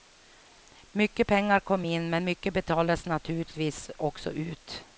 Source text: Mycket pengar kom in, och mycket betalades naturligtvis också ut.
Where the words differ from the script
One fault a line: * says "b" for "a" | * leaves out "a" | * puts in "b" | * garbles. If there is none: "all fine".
* says "men" for "och"